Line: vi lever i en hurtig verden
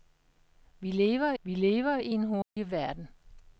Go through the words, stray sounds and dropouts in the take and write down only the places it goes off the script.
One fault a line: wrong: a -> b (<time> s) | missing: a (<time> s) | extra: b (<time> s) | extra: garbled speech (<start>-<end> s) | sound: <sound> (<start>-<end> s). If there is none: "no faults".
extra: vi lever (1.4 s)
sound: dropout (2.4-2.6 s)